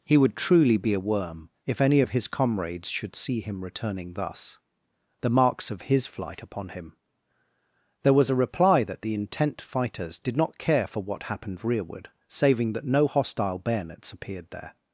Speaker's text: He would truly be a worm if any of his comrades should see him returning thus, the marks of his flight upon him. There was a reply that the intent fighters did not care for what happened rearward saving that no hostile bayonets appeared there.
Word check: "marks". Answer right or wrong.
right